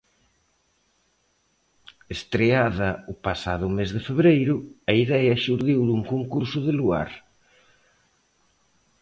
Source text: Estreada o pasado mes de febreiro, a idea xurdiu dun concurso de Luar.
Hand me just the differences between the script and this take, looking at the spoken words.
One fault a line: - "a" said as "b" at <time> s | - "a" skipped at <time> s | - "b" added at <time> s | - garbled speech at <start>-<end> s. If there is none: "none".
none